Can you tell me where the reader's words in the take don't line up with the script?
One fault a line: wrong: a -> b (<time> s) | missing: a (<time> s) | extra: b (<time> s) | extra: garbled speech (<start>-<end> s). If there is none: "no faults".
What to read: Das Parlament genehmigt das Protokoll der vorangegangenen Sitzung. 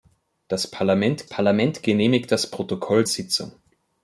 extra: Parlament (1.2 s)
missing: der vorangegangenen (3.0 s)